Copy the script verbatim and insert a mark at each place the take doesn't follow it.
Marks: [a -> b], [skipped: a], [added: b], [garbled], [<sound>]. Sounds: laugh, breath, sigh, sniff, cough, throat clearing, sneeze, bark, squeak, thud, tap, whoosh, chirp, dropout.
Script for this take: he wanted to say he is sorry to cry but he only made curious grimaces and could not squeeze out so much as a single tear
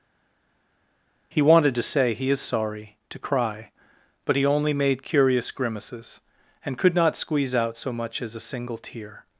he wanted to say he is sorry to cry but he only made curious grimaces and could not squeeze out so much as a single tear